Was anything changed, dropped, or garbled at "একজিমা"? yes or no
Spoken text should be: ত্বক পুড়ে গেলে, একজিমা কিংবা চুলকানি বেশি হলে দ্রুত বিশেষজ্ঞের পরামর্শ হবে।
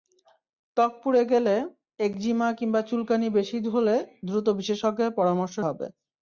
no